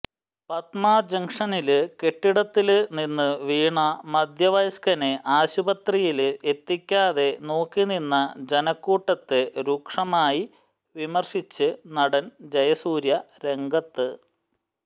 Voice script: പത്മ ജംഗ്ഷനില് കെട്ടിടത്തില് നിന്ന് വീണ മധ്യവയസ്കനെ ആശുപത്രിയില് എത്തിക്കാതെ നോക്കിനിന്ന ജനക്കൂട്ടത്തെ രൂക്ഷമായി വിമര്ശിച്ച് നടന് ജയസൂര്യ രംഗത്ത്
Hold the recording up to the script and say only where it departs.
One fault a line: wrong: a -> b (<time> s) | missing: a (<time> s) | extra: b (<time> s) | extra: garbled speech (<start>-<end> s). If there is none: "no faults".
no faults